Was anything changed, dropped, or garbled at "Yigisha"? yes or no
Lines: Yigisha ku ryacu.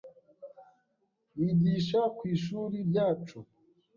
no